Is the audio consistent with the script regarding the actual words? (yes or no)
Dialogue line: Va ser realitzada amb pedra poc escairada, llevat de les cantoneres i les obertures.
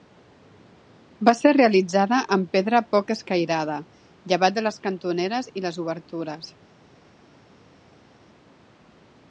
yes